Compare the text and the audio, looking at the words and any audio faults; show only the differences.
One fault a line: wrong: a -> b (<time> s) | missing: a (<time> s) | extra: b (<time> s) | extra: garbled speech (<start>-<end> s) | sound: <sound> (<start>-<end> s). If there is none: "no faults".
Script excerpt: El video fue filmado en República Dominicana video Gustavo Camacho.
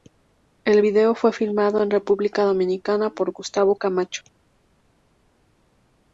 wrong: video -> por (3.1 s)